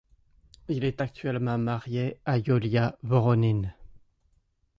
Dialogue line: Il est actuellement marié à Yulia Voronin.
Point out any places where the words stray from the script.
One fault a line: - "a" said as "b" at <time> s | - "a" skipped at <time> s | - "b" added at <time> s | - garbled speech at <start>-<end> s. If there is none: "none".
none